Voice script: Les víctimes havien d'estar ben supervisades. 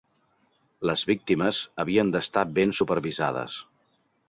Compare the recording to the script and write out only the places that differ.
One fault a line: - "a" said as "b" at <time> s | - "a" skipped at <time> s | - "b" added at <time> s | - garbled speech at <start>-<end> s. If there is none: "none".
none